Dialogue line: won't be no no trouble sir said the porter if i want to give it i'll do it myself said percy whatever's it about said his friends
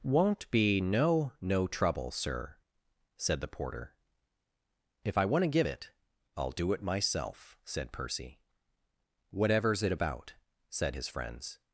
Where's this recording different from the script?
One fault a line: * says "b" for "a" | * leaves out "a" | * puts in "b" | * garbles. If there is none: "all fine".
all fine